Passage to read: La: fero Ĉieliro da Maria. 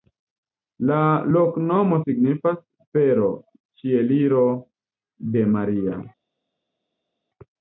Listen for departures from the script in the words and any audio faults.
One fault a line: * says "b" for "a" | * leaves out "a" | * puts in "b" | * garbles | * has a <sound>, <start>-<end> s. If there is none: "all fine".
* puts in "loknomo signifas"
* says "de" for "da"